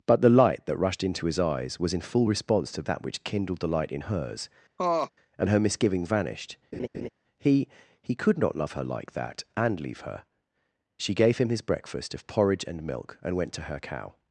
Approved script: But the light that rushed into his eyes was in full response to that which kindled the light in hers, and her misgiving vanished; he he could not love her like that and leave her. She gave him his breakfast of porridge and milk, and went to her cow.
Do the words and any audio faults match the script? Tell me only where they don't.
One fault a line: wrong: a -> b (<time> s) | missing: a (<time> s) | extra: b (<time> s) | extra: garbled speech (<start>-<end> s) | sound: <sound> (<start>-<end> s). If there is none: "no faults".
sound: laugh (4.8-5.1 s)
sound: laugh (6.7-7.1 s)